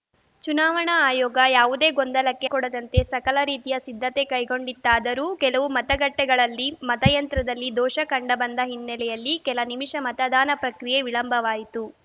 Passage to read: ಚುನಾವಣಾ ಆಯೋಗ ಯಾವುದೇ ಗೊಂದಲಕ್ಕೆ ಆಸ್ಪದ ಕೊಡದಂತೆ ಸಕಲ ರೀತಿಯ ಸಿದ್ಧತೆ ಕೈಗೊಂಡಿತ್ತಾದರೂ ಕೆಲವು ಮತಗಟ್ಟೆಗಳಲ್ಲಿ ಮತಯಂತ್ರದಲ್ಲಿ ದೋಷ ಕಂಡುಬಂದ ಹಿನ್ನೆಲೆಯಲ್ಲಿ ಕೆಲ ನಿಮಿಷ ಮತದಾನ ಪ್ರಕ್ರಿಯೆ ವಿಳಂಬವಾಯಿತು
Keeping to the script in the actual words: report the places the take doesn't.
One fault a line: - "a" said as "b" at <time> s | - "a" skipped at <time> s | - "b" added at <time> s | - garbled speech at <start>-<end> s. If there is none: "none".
- "ಆಸ್ಪದ" skipped at 2.5 s